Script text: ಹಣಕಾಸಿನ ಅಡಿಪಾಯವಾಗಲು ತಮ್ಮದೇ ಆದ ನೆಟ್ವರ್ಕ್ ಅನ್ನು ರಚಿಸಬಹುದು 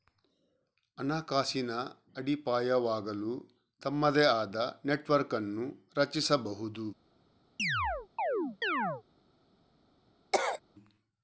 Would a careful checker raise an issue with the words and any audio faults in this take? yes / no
yes